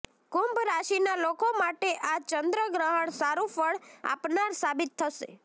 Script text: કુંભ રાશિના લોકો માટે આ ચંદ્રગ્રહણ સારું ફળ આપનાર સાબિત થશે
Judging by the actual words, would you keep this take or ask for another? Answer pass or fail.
pass